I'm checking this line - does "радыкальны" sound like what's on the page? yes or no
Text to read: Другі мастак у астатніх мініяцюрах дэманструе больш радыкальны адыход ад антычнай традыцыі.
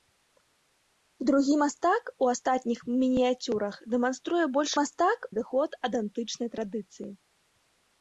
no